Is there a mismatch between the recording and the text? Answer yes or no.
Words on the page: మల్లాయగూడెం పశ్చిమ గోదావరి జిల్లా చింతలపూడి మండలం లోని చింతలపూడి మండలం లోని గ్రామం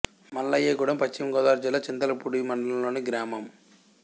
yes